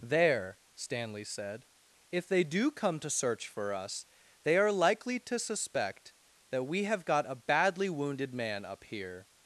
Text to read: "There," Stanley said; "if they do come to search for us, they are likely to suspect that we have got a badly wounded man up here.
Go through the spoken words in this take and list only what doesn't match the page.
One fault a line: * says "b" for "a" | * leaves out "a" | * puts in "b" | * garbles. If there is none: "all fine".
all fine